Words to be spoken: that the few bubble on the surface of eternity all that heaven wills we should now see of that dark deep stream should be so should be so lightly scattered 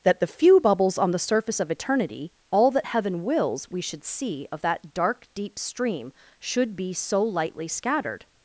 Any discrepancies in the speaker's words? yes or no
yes